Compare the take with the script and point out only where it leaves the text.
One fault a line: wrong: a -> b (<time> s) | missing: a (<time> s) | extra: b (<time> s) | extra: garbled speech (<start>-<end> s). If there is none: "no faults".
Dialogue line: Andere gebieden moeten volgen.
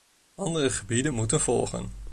no faults